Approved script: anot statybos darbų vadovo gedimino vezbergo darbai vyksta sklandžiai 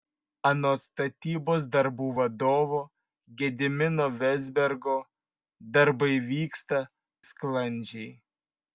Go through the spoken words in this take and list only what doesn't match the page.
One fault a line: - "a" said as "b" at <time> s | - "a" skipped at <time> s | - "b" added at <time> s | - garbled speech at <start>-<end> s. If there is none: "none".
none